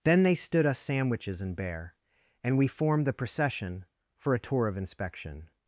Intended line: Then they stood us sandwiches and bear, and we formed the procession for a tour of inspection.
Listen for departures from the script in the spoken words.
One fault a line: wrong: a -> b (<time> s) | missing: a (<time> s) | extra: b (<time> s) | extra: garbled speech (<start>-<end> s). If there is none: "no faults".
no faults